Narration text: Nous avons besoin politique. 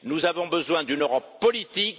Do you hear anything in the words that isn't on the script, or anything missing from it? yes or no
yes